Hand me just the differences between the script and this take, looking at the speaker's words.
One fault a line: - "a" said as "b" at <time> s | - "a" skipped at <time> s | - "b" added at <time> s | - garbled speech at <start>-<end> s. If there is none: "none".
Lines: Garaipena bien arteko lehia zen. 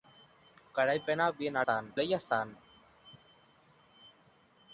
- "arteko" said as "zen" at 1.6 s